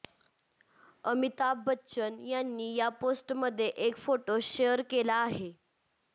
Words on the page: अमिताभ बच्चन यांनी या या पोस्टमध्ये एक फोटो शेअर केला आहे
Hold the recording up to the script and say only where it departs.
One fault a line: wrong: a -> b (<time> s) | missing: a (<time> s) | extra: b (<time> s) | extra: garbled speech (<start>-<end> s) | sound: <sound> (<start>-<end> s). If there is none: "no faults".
missing: या (2.9 s)